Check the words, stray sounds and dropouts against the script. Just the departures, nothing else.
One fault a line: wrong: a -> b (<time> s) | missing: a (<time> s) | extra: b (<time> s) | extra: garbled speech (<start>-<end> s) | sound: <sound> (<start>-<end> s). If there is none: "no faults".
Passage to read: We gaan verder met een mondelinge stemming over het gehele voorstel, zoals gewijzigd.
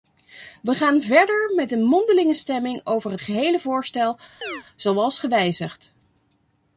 sound: chirp (4.4-4.6 s)